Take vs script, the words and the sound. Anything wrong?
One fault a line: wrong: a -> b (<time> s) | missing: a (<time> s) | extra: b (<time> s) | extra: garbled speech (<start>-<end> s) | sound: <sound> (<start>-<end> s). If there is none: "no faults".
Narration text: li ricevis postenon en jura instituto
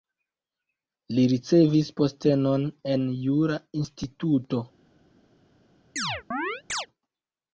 sound: chirp (6.0-6.9 s)